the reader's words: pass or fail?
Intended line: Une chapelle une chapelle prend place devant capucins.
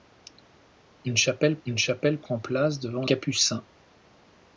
pass